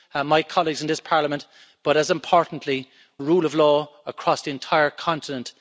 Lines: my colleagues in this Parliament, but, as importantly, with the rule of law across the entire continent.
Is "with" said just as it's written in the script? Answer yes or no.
no